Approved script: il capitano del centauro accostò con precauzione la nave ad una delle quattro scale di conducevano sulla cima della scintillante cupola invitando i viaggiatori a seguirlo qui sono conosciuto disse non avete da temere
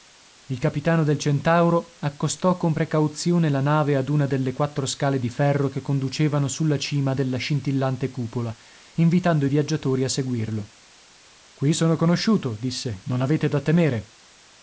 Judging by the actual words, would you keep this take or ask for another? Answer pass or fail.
fail